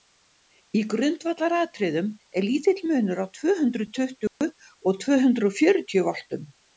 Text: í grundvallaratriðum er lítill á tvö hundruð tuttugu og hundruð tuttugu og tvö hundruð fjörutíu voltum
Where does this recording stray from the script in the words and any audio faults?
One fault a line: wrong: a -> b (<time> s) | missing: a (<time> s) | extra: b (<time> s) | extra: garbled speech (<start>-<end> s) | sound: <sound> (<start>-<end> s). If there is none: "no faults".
extra: munur (2.9 s)
sound: dropout (4.3-4.4 s)
missing: hundruð tuttugu og (5.0 s)